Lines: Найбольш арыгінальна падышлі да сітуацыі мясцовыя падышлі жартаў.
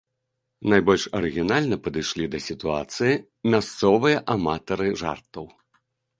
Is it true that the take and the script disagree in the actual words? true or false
true